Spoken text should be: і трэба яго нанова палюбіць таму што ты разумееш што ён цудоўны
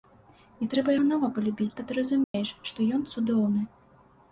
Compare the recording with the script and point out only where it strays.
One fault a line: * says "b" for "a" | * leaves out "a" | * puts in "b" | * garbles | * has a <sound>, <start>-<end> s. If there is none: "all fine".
* leaves out "яго"
* leaves out "таму"
* has a dropout, 2.2-2.3 s